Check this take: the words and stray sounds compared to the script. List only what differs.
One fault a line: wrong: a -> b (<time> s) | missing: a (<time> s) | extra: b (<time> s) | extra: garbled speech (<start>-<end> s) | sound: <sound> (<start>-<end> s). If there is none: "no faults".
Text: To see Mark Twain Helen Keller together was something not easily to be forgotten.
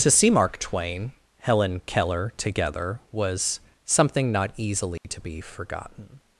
sound: dropout (5.0-5.0 s)